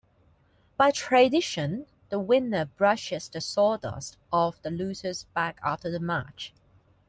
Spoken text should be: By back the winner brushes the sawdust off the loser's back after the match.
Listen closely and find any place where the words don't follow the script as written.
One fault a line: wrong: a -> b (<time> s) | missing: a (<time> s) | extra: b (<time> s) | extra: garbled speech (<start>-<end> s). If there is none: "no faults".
wrong: back -> tradition (0.9 s)